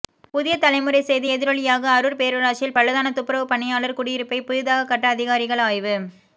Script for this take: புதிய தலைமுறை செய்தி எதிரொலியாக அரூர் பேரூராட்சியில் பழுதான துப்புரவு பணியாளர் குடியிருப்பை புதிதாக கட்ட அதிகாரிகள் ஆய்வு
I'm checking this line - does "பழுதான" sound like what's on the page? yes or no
yes